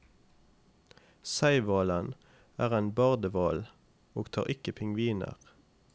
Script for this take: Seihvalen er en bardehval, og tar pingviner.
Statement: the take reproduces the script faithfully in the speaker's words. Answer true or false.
false